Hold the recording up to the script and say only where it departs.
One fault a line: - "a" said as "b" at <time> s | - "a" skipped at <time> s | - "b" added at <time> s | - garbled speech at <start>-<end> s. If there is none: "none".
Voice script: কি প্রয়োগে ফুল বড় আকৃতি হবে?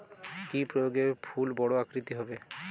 none